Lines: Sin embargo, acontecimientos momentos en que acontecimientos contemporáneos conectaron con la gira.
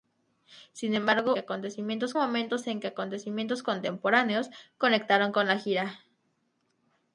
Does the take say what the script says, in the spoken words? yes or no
yes